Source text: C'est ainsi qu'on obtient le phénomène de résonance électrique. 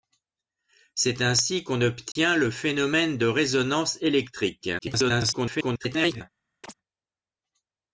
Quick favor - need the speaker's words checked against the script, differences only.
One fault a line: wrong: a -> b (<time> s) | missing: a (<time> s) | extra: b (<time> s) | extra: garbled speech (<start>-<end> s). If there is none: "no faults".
extra: garbled speech (4.8-6.2 s)